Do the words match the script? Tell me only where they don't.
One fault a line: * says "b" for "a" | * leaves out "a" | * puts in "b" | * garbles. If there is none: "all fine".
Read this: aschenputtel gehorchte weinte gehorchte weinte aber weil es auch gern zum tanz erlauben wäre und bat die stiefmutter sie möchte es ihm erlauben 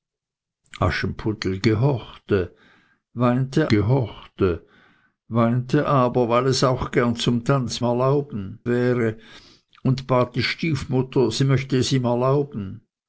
all fine